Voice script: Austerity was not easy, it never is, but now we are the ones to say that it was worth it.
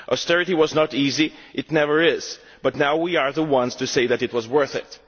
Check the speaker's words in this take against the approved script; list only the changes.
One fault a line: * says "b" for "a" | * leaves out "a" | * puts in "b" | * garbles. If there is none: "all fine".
all fine